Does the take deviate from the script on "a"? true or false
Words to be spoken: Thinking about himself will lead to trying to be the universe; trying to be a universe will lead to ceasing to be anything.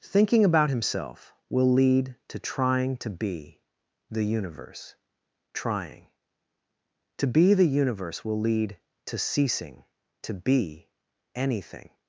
true